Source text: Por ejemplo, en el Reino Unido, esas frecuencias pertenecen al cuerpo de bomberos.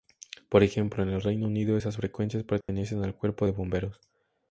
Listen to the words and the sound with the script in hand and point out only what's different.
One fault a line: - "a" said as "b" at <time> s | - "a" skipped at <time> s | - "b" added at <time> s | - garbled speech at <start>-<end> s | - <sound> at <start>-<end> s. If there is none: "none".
- dropout at 2.6-2.7 s